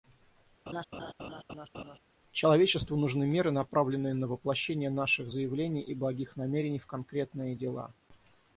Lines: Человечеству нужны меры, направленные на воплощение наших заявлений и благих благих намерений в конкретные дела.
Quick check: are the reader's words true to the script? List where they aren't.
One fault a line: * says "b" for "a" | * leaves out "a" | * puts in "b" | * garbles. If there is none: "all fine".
* leaves out "благих"